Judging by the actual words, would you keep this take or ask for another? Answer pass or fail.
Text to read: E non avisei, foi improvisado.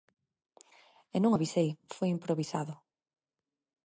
pass